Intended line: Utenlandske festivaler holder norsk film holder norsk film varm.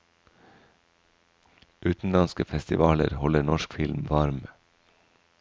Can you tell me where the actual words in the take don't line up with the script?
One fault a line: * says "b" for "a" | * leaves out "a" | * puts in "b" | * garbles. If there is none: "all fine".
* leaves out "holder norsk film"